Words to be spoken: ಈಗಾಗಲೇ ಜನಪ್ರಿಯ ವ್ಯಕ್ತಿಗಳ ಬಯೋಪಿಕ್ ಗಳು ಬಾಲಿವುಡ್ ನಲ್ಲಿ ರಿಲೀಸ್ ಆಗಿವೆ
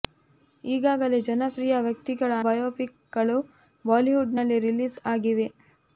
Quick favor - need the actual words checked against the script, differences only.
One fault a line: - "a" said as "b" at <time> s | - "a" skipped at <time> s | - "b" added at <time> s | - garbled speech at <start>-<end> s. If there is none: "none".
none